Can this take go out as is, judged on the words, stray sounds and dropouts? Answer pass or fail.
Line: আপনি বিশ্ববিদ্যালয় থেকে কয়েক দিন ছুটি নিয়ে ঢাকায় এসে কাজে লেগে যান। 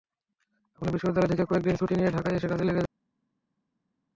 pass